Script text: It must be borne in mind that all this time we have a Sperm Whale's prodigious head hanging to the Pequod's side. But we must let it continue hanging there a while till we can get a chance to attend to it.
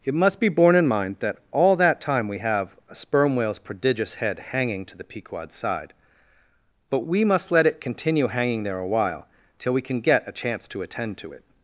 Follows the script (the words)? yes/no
no